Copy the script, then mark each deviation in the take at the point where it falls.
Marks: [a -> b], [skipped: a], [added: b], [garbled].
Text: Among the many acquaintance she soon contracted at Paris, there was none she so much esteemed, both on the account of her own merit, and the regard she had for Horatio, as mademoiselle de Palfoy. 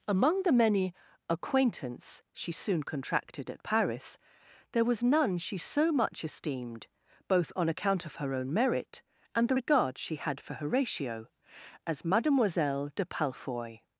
Among the many acquaintance she soon contracted at Paris, there was none she so much esteemed, both on [skipped: the] account of her own merit, and the regard she had for Horatio, as mademoiselle de Palfoy.